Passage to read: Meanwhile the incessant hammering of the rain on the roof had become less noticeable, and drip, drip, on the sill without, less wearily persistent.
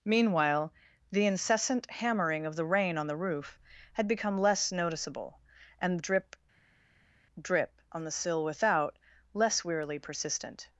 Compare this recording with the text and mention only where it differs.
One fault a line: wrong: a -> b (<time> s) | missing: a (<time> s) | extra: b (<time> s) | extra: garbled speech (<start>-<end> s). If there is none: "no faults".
no faults